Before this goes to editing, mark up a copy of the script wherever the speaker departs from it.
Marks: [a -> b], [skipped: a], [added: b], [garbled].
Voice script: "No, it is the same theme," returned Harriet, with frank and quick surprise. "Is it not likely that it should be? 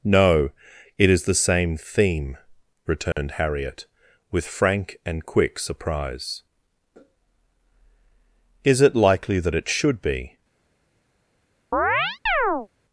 "No, it is the same theme," returned Harriet, with frank and quick surprise. "Is it [skipped: not] likely that it should be?